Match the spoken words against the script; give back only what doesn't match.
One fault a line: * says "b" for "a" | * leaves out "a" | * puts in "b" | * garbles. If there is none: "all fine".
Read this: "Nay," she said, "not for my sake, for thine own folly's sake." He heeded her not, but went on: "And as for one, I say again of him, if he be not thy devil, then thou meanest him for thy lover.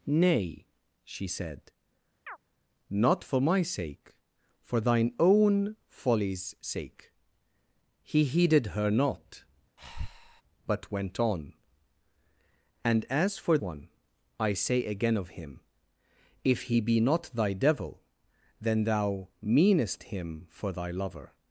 all fine